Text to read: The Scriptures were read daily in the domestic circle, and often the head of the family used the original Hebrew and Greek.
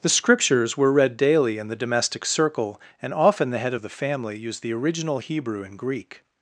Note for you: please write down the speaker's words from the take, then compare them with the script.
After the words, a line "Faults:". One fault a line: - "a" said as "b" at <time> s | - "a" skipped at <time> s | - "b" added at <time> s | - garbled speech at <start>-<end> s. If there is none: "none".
The Scriptures were read daily in the domestic circle, and often the head of the family used the original Hebrew and Greek.
Faults:
none